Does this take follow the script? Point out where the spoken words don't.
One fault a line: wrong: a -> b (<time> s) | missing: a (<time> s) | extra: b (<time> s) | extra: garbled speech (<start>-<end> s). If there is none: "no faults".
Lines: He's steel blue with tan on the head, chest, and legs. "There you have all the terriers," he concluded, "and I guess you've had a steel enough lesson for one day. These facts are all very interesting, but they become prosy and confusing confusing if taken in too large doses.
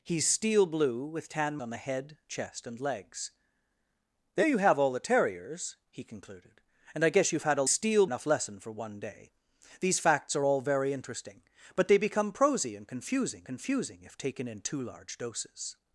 no faults